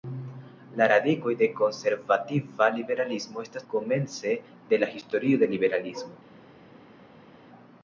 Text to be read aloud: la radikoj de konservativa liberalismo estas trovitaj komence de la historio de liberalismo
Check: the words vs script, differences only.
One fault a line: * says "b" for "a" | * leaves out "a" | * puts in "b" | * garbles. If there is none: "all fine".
* leaves out "trovitaj"